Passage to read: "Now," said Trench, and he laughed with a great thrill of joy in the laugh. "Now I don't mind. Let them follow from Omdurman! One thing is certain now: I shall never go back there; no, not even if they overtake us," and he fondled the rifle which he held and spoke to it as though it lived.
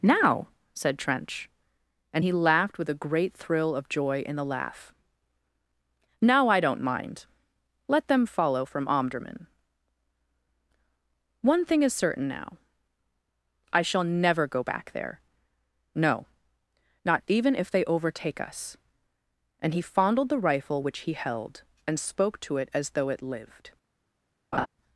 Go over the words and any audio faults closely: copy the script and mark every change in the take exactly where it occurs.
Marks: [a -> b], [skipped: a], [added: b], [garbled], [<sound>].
"Now," said Trench, and he laughed with a great thrill of joy in the laugh. "Now I don't mind. Let them follow from Omdurman! One thing is certain now: I shall never go back there; no, not even if they overtake us," and he fondled the rifle which he held and spoke to it as though it lived. [laugh]